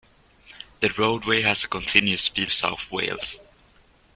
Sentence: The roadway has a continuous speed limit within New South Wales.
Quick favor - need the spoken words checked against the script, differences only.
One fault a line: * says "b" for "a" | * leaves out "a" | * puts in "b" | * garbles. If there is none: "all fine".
* leaves out "limit within New"